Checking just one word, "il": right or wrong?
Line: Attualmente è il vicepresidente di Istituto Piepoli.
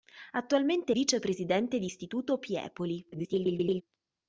wrong